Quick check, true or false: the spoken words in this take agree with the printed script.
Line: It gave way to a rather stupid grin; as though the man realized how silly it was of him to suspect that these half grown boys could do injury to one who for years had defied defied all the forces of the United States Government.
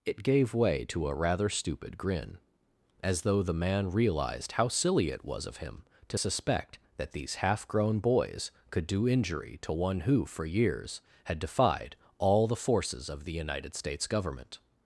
false